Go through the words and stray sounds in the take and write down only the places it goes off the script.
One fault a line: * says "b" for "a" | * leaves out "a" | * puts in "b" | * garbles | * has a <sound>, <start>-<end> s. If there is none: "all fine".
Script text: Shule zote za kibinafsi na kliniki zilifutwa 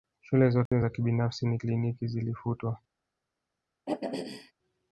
* has a dropout, 0.7-0.7 s
* has a throat clearing, 3.9-4.5 s